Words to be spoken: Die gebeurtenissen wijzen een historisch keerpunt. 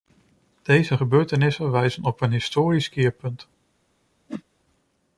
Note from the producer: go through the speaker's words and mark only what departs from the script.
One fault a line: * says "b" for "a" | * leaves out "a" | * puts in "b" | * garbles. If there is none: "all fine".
* says "Deze" for "Die"
* puts in "op"